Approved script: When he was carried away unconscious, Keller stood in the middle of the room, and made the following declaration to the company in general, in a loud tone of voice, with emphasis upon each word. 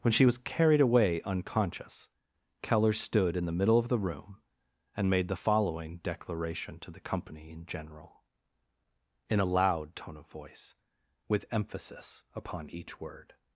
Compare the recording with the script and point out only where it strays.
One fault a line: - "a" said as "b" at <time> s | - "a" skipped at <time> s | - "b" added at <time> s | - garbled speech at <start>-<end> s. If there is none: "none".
- "he" said as "she" at 0.1 s